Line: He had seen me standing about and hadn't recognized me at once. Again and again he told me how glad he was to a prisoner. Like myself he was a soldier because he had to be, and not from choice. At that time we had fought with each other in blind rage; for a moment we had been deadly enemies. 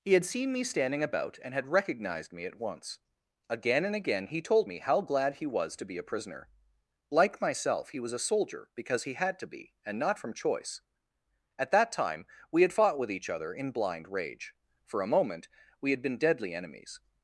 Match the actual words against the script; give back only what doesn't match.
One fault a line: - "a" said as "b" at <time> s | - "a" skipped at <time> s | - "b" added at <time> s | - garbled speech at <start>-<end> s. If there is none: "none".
- "hadn't" said as "had" at 1.5 s
- "be" added at 5.8 s